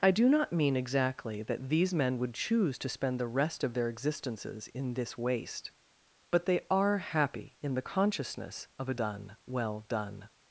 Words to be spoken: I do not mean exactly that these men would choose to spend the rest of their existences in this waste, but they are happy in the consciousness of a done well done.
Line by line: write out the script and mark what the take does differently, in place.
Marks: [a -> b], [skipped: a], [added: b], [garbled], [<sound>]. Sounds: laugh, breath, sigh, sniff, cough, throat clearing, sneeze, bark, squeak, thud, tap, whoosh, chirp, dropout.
I do not mean exactly that these men would choose to spend the rest of their existences in this waste, but they are happy in the consciousness of a done well done.